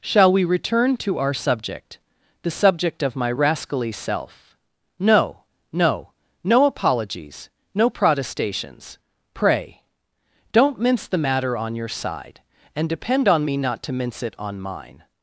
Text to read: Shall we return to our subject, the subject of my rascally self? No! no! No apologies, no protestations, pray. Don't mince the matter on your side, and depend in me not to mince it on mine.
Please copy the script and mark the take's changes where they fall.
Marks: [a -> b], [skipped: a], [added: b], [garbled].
Shall we return to our subject, the subject of my rascally self? No! no! No apologies, no protestations, pray. Don't mince the matter on your side, and depend [in -> on] me not to mince it on mine.